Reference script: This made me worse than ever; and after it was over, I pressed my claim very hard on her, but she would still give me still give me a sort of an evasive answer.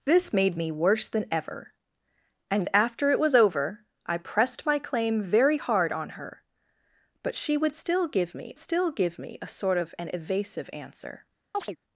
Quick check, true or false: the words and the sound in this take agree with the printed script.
false